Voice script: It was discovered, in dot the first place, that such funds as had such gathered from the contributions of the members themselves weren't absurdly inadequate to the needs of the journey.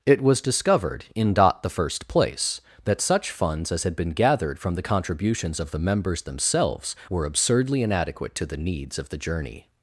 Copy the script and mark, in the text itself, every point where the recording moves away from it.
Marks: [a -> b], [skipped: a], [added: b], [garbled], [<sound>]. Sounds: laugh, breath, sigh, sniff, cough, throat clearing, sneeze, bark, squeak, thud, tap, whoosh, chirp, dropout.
It was discovered, in dot the first place, that such funds as had [such -> been] gathered from the contributions of the members themselves [weren't -> were] absurdly inadequate to the needs of the journey.